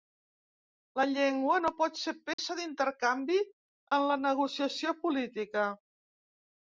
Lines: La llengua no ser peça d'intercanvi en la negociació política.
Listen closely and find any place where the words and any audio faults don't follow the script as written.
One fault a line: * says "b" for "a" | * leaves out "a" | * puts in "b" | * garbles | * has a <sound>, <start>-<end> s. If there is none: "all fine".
* puts in "pot"
* has a dropout, 2.3-2.4 s